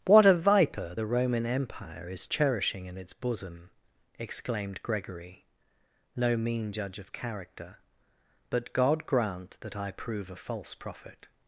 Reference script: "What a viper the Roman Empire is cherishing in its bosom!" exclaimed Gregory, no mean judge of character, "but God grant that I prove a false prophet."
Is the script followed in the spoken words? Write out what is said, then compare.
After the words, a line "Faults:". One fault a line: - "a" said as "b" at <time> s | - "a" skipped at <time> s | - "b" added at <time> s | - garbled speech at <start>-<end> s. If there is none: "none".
"What a viper the Roman Empire is cherishing in its bosom!" exclaimed Gregory, no mean judge of character, "but God grant that I prove a false prophet."
Faults:
none